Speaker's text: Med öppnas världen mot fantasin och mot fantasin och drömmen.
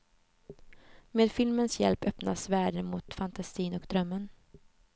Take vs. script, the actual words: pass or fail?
fail